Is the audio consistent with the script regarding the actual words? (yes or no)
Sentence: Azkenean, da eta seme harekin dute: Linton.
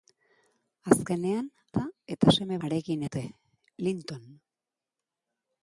yes